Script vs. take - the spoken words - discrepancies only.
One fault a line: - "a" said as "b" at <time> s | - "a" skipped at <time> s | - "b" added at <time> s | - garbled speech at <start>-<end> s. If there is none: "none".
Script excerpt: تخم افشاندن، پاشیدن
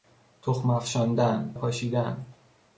none